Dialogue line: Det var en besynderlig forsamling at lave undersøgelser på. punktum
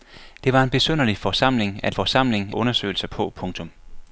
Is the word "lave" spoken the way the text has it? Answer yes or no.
no